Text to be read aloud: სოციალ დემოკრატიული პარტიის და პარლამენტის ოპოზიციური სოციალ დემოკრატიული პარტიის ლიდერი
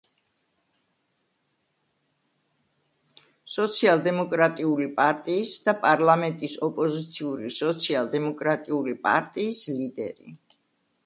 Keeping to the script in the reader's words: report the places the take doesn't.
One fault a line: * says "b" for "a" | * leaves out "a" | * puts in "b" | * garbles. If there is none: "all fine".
all fine